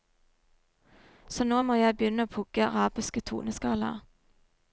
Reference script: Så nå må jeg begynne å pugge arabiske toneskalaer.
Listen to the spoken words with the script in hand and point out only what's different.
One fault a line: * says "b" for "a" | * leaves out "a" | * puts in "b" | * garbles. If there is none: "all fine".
all fine